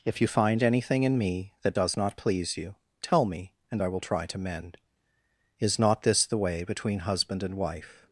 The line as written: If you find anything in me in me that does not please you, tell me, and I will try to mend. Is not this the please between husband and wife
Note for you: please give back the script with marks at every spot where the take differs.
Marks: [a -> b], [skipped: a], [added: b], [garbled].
If you find anything in me [skipped: in me] that does not please you, tell me, and I will try to mend. Is not this the [please -> way] between husband and wife